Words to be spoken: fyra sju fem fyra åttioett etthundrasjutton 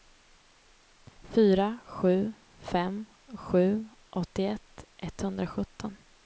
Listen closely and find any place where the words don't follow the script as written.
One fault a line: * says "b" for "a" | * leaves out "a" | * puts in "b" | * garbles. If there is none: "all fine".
* says "sju" for "fyra"